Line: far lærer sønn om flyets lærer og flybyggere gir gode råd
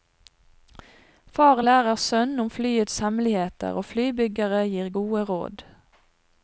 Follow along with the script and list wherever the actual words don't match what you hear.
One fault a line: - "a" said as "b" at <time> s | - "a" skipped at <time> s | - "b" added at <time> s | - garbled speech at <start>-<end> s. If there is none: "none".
- "lærer" said as "hemmeligheter" at 3.1 s